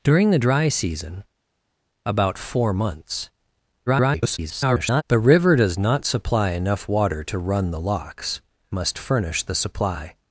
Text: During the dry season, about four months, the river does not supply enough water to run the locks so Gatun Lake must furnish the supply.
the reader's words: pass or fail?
fail